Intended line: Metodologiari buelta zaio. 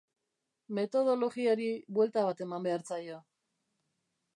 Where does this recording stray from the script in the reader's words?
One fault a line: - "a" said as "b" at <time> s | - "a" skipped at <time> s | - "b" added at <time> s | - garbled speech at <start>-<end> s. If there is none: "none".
- "bat eman behar" added at 2.3 s